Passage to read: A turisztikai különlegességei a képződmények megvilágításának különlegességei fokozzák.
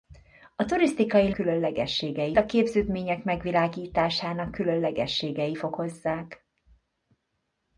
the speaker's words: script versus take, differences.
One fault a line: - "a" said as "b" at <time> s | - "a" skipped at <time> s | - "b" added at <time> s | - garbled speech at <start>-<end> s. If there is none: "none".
none